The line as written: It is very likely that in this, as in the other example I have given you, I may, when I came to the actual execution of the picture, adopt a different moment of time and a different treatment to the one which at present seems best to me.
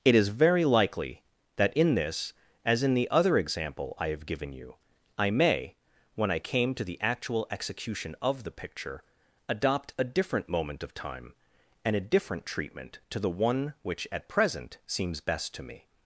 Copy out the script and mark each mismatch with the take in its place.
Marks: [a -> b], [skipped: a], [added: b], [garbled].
It is very likely that in this, as in the other example I have given you, I may, when I came to the actual execution of the picture, adopt a different moment of time and a different treatment to the one which at present seems best to me.